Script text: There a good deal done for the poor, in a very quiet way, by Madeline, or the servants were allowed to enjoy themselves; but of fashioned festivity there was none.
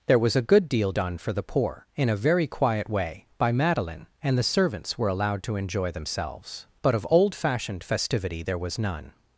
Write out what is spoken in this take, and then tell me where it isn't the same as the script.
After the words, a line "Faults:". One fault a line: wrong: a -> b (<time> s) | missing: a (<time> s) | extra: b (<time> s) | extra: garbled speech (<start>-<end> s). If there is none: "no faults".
There was a good deal done for the poor, in a very quiet way, by Madeline, and the servants were allowed to enjoy themselves; but of old fashioned festivity there was none.
Faults:
extra: was (0.2 s)
wrong: or -> and (4.2 s)
extra: old (7.1 s)